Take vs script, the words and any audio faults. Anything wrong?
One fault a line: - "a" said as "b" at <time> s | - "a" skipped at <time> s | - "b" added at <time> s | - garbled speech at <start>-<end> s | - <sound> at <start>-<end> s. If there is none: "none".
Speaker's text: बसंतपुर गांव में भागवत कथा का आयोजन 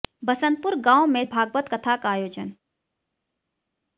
none